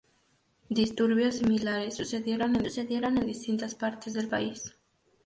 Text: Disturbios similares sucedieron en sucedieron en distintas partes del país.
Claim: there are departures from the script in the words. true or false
false